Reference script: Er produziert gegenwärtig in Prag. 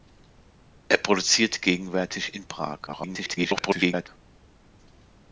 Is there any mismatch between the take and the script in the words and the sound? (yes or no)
yes